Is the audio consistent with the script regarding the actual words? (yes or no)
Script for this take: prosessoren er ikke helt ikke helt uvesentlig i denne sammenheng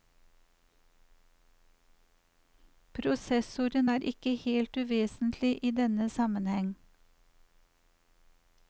no